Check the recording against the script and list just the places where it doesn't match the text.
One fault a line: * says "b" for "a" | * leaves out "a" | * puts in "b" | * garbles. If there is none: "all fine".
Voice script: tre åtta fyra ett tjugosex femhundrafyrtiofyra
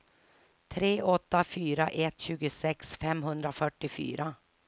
all fine